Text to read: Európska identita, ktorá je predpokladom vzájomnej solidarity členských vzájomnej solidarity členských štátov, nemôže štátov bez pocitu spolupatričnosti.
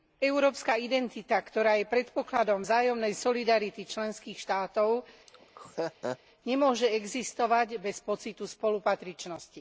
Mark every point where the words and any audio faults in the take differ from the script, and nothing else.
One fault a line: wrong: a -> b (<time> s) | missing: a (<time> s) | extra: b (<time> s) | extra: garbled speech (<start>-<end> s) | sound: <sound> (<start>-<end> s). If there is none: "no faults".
missing: vzájomnej solidarity členských (4.3 s)
sound: laugh (5.3-6.2 s)
wrong: štátov -> existovať (6.9 s)